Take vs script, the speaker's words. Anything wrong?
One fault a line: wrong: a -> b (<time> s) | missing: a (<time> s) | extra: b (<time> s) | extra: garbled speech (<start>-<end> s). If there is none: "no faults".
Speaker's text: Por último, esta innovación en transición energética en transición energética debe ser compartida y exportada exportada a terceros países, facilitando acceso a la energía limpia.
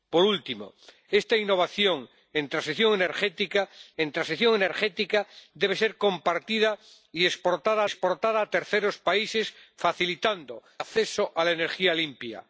no faults